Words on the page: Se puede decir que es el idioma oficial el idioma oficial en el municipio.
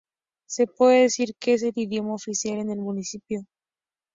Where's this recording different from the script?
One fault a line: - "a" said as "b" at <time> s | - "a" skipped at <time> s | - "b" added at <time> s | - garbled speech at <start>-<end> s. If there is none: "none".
- "el idioma oficial" skipped at 2.6 s